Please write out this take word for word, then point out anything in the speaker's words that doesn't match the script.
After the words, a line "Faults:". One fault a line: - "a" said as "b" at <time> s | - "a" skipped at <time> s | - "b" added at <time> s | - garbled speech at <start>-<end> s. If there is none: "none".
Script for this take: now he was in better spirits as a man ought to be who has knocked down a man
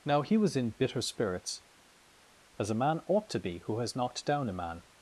now he was in bitter spirits as a man ought to be who has knocked down a man
Faults:
- "better" said as "bitter" at 0.7 s